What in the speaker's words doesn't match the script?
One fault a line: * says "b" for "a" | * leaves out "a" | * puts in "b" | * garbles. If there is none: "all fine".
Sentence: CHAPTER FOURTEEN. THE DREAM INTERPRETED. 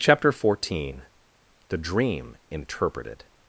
all fine